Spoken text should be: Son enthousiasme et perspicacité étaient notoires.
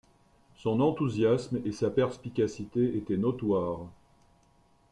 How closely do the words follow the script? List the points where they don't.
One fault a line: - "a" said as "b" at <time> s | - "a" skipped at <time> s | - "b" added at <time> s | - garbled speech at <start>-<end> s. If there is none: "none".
- "sa" added at 1.7 s